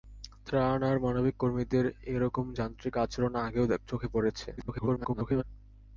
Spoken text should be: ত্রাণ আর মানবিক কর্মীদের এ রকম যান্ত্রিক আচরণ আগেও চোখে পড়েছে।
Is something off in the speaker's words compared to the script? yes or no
yes